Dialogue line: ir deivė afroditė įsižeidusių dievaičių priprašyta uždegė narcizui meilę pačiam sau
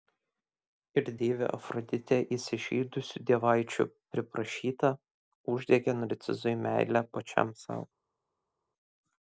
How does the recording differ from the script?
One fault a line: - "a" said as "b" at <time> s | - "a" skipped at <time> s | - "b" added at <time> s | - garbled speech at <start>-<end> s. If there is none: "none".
none